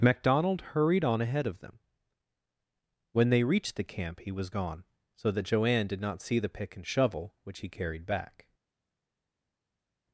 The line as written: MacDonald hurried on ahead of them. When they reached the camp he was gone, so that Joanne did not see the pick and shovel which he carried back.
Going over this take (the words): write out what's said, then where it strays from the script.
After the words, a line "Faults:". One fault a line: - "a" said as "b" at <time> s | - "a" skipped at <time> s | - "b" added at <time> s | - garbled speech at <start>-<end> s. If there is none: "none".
MacDonald hurried on ahead of them. When they reached the camp he was gone, so that Joanne did not see the pick and shovel which he carried back.
Faults:
none